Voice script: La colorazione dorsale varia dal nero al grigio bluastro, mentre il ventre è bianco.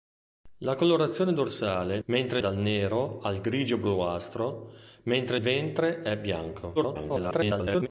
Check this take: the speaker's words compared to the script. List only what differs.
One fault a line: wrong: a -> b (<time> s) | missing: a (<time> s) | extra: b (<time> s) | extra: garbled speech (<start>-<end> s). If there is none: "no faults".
wrong: varia -> mentre (2.0 s)
missing: il (5.4 s)
extra: garbled speech (6.8-7.9 s)